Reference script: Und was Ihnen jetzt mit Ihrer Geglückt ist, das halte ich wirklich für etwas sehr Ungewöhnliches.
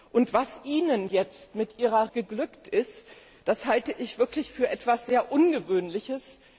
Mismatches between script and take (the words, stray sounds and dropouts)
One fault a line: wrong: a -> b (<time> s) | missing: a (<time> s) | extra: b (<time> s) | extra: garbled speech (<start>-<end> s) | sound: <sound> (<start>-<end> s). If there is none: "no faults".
no faults